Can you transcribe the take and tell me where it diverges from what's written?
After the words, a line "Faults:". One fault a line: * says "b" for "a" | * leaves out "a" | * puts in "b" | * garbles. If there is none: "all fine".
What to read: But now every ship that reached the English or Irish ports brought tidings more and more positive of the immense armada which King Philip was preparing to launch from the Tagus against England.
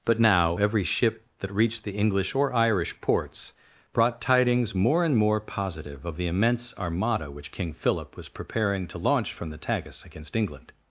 But now every ship that reached the English or Irish ports brought tidings more and more positive of the immense armada which King Philip was preparing to launch from the Tagus against England.
Faults:
all fine